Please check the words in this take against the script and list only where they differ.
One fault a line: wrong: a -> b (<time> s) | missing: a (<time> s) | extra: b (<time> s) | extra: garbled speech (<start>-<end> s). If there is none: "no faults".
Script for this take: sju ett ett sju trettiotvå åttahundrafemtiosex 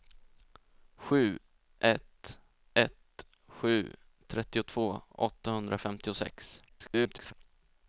extra: garbled speech (6.7-7.3 s)